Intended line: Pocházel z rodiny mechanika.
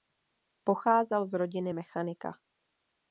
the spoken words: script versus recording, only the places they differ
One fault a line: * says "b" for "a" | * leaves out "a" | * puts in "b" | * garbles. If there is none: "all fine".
all fine